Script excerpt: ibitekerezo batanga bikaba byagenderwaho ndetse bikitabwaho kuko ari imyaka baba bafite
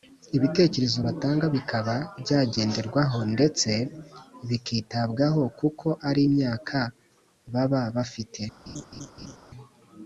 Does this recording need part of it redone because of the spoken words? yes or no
no